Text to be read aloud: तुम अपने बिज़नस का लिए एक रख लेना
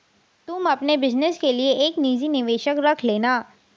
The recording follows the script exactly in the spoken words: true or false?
false